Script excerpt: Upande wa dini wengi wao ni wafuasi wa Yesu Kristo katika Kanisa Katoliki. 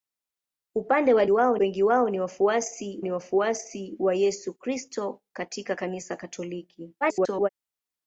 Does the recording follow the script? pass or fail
fail